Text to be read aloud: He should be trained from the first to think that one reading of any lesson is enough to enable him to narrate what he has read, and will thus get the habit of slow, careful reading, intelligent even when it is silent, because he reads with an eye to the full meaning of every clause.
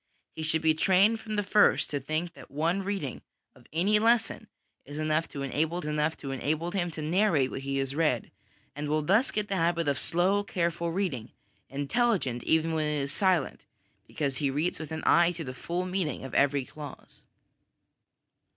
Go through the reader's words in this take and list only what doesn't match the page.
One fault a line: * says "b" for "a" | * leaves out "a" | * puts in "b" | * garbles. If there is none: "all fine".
* puts in "enough to enable"